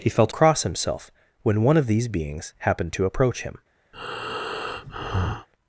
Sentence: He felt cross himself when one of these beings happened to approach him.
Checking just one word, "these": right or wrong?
right